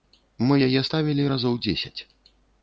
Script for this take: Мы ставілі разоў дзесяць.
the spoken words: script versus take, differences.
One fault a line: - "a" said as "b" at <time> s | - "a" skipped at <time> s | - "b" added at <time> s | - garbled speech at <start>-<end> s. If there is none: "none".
- "яе" added at 0.7 s